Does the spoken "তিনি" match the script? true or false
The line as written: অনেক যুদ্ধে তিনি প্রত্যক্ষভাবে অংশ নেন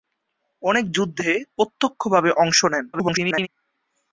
false